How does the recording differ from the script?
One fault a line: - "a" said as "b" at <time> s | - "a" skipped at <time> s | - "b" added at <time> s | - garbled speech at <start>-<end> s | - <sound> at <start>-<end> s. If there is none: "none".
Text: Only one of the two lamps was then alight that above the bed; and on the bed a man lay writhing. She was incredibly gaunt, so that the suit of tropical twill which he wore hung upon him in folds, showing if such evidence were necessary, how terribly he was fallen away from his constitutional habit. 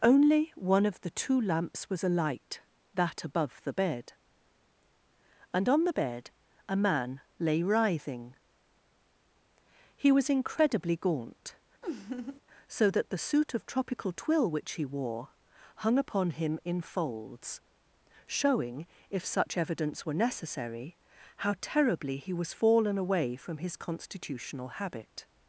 - "then" skipped at 2.0 s
- "She" said as "He" at 9.9 s
- laugh at 11.8-12.4 s